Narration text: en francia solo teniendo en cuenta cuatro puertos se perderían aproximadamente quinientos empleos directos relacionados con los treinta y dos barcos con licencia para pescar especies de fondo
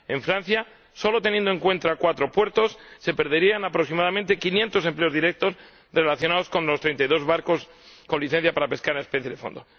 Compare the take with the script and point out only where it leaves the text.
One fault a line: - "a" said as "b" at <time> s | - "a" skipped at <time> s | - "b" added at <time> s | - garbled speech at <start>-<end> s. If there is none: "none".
none